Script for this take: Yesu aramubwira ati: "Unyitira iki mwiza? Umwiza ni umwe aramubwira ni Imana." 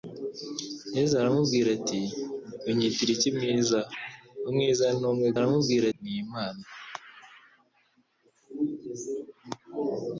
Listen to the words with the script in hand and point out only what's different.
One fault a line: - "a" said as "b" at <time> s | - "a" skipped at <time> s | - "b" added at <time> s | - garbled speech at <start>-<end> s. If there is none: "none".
none